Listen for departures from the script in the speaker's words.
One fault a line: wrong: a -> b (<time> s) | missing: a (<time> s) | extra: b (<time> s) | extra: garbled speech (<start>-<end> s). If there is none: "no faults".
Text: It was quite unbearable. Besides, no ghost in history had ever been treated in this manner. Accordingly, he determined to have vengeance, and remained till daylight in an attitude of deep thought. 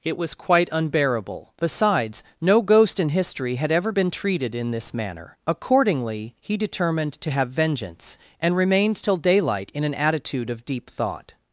no faults